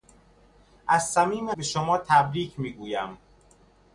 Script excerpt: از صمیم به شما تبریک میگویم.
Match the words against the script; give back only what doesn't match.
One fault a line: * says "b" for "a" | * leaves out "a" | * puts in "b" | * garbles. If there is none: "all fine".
all fine